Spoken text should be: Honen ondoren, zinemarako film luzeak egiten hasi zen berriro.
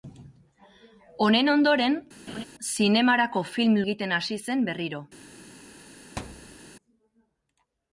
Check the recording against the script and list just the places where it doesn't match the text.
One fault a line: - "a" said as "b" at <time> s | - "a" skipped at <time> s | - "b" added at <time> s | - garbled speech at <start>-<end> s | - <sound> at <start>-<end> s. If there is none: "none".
- laugh at 2.3-2.4 s
- "luzeak" skipped at 3.8 s
- thud at 6.2-6.6 s